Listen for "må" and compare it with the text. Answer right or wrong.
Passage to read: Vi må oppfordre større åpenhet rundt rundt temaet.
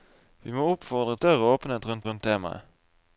right